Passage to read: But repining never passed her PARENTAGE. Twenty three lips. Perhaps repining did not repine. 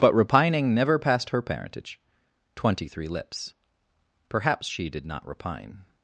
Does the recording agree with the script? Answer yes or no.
no